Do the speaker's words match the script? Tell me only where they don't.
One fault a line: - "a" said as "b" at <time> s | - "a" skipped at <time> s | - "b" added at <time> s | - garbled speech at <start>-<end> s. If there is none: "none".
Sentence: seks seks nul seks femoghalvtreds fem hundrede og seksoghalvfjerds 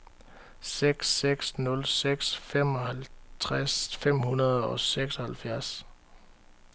none